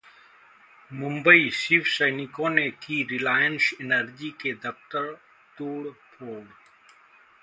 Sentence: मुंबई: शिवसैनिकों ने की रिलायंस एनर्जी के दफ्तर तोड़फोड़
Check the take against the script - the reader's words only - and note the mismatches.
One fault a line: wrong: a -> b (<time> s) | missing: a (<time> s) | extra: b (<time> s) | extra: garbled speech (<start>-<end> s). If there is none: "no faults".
no faults